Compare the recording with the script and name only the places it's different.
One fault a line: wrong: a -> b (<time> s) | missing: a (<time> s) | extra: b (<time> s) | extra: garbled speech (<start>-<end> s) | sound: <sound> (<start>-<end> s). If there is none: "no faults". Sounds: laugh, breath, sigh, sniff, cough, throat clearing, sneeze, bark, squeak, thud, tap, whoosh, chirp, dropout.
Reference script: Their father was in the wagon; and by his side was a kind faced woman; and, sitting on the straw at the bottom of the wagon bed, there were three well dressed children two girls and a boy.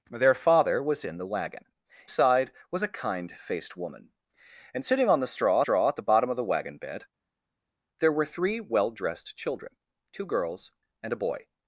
missing: and by his (1.6 s)
extra: straw (5.6 s)